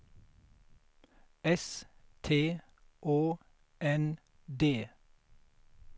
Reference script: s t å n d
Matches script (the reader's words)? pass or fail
pass